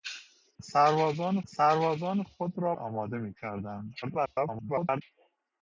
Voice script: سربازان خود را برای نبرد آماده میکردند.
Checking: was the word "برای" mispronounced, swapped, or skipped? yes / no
yes